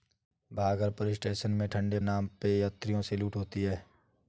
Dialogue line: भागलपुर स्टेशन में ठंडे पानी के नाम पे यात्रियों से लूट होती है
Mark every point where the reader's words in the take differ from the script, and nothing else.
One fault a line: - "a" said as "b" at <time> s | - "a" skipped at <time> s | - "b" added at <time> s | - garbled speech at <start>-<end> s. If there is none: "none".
- "पानी के" skipped at 2.0 s